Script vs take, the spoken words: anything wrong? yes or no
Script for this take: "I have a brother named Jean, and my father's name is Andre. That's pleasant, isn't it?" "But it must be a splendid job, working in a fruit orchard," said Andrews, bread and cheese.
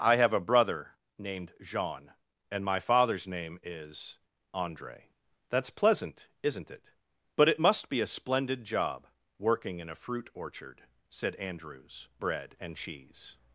no